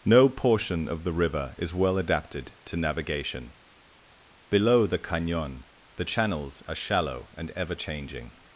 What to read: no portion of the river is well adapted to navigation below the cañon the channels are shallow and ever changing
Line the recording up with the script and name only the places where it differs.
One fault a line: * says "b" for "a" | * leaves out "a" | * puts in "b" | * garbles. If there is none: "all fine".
all fine